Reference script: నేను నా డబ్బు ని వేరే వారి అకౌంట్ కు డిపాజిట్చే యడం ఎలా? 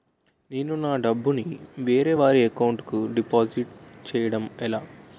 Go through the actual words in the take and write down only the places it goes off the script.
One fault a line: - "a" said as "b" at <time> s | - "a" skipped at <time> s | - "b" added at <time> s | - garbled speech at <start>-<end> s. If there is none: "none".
none